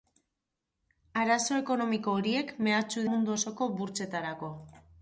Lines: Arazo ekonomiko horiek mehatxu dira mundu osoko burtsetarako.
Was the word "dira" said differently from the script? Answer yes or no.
yes